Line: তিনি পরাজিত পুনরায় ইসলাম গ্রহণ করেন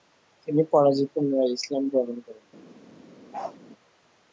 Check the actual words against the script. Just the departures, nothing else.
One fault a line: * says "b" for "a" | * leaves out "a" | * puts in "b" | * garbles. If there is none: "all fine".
all fine